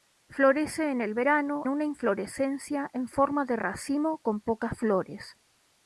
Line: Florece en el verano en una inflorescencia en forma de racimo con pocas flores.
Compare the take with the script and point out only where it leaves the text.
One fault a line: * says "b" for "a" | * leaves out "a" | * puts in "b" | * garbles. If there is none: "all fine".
* leaves out "en"